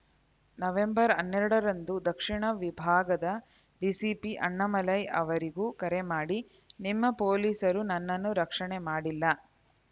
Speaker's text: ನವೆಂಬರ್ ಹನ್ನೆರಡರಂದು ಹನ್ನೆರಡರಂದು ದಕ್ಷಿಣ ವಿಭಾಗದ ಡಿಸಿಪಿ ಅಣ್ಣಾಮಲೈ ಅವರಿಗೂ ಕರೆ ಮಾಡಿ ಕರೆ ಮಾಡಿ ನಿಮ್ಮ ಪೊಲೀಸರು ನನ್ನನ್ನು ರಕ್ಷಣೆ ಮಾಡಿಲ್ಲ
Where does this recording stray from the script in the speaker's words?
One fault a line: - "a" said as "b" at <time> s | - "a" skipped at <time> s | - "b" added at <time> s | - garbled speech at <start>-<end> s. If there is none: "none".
- "ಹನ್ನೆರಡರಂದು" skipped at 1.9 s
- "ಕರೆ ಮಾಡಿ" skipped at 6.4 s